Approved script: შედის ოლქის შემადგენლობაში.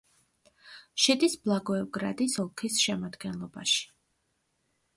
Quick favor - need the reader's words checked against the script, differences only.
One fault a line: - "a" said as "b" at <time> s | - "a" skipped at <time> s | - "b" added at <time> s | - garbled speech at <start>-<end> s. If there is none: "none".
- "ბლაგოევგრადის" added at 1.5 s